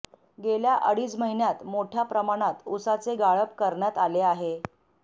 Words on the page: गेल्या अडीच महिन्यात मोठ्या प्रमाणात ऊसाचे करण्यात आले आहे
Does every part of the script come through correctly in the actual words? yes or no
no